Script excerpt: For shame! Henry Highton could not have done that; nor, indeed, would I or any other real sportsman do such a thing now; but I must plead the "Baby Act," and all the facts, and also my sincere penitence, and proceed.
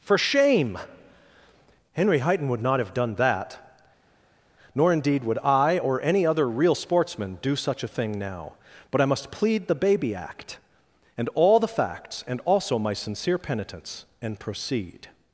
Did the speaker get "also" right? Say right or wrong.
right